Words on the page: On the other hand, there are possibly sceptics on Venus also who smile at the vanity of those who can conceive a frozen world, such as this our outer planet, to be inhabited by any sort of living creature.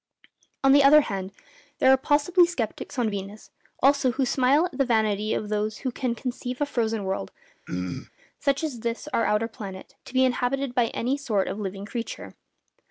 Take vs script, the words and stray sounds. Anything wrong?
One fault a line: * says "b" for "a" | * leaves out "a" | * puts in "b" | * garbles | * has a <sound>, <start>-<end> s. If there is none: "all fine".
* has a throat clearing, 7.7-8.1 s